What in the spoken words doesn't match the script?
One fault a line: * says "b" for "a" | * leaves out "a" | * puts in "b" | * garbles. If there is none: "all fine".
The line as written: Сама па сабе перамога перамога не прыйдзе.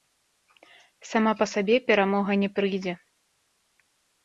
* leaves out "перамога"